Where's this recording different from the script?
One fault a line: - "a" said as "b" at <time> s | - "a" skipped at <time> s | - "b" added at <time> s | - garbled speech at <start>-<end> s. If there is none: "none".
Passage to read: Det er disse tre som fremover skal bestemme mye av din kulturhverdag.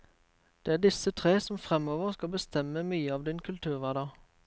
none